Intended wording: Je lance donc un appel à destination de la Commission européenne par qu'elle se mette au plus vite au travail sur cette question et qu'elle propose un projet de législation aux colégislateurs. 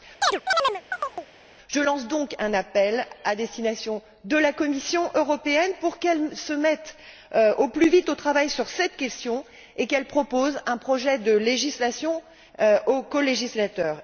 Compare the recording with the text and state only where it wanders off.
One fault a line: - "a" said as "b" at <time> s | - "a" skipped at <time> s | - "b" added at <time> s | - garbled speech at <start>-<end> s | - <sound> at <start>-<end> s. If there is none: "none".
- chirp at 0.2-1.3 s
- "par" said as "pour" at 5.8 s